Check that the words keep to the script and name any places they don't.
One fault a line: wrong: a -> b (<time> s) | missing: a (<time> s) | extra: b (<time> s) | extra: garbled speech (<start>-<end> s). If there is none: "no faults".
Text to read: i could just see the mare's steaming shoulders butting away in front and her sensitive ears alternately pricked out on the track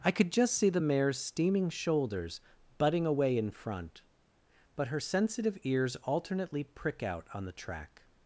wrong: and -> but (4.8 s)
wrong: pricked -> prick (6.6 s)